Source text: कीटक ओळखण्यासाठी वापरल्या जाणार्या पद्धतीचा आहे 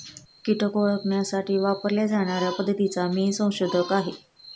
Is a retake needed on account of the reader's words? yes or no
yes